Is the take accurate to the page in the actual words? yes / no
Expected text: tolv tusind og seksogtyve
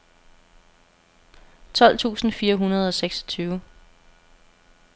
no